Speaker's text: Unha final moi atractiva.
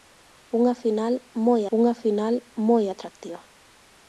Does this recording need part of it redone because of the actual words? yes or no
yes